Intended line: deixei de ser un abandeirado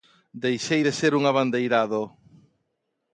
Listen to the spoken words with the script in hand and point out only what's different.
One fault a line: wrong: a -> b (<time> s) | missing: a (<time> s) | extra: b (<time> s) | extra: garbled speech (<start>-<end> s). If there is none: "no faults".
no faults